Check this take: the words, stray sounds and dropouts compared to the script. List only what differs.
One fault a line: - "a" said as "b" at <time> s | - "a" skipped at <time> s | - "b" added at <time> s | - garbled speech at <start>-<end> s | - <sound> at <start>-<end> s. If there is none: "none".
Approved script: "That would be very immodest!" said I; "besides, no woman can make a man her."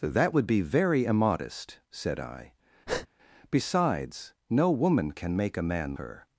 - breath at 2.9-3.1 s